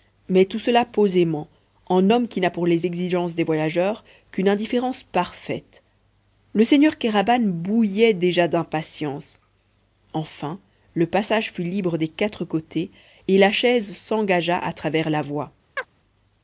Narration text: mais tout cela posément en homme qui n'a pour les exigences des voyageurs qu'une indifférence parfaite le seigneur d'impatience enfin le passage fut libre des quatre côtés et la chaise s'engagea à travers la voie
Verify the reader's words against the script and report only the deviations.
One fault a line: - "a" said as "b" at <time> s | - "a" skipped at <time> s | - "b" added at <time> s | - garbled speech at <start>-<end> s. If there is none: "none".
- "kéraban bouillait déjà" added at 7.0 s